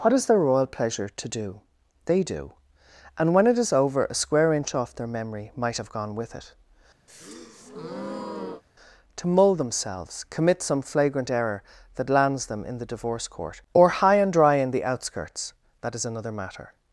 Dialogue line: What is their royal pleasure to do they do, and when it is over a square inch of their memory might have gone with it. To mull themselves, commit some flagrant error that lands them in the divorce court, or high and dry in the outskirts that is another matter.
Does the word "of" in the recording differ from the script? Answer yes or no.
yes